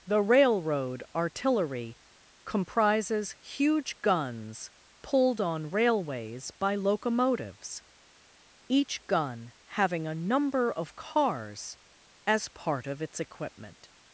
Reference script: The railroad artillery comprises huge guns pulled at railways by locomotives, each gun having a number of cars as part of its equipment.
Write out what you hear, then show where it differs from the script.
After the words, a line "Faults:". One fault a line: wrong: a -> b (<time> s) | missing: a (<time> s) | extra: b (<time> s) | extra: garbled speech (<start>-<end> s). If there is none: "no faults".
The railroad artillery comprises huge guns pulled on railways by locomotives, each gun having a number of cars as part of its equipment.
Faults:
wrong: at -> on (5.4 s)